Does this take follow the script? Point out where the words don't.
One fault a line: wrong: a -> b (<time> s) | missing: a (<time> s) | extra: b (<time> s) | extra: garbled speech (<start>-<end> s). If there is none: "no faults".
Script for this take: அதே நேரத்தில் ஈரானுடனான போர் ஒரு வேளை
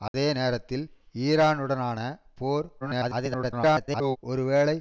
extra: garbled speech (2.8-4.2 s)